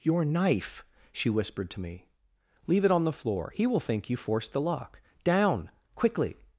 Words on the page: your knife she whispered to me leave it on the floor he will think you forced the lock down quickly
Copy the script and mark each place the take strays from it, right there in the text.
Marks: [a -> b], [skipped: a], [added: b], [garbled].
your knife she whispered to me leave it on the floor he will think you forced the lock down quickly